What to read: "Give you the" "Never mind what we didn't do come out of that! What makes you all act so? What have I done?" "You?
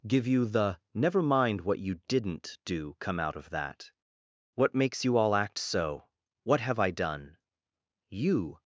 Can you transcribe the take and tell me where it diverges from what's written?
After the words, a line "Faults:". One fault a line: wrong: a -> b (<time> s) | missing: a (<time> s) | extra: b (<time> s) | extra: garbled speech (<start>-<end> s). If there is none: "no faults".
"Give you the" "Never mind what you didn't do come out of that! What makes you all act so? What have I done?" "You?
Faults:
wrong: we -> you (1.8 s)